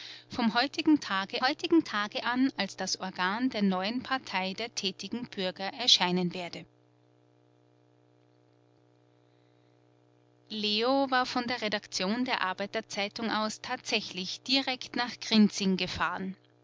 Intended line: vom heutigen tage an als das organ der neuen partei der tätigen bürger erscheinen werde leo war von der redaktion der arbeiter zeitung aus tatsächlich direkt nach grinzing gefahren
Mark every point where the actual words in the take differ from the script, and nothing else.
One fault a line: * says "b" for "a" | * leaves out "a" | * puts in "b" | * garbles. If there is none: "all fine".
* puts in "heutigen tage"